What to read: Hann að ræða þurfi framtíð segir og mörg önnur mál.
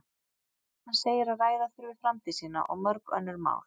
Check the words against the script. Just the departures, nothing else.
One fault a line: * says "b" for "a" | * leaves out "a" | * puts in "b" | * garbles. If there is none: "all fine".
* puts in "segir"
* says "sína" for "segir"